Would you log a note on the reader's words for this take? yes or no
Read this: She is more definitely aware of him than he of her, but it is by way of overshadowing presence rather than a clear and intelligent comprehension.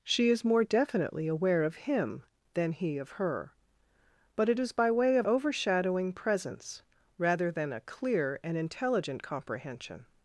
no